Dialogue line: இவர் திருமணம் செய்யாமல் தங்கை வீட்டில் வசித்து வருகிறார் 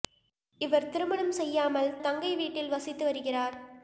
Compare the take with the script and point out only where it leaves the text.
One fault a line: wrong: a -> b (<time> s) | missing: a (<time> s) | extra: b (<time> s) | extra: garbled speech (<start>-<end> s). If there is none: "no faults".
no faults